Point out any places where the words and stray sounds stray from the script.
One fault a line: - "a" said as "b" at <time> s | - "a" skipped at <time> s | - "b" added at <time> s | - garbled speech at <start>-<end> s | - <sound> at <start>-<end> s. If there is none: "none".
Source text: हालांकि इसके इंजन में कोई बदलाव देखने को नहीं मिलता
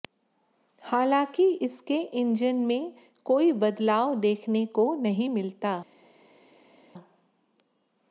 none